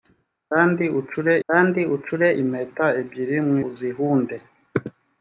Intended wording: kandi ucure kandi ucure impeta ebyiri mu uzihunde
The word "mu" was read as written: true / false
true